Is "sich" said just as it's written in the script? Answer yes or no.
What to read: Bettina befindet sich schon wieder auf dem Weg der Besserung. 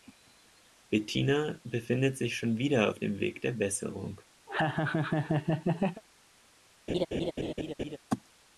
yes